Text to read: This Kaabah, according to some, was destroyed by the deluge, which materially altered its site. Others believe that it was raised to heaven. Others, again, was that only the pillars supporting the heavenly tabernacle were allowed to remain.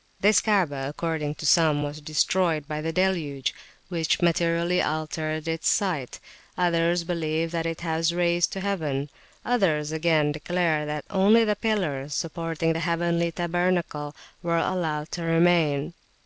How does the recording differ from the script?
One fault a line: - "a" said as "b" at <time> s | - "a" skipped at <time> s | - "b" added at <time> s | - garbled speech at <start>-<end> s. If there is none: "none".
- "was" said as "declare" at 10.3 s